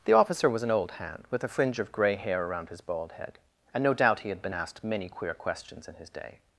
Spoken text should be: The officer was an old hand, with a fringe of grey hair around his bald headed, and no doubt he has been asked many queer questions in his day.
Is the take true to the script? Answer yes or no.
no